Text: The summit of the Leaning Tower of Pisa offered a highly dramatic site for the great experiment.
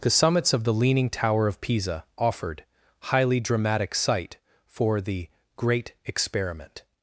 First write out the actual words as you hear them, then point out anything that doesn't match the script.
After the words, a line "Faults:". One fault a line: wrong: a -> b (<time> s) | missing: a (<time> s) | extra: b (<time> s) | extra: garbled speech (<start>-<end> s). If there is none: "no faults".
The summits of the Leaning Tower of Pisa offered highly dramatic site for the great experiment.
Faults:
wrong: summit -> summits (0.1 s)
missing: a (2.6 s)